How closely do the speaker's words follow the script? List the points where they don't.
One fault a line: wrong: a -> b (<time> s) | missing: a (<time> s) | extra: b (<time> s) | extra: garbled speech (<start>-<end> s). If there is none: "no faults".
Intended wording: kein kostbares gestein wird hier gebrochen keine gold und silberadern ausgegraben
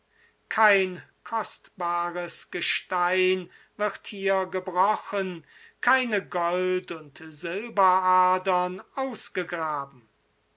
no faults